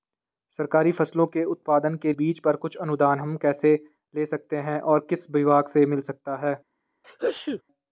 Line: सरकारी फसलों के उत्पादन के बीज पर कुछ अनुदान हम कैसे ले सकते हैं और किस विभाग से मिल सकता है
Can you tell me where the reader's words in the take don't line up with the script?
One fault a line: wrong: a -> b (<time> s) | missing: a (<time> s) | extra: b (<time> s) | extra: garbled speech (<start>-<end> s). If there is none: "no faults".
no faults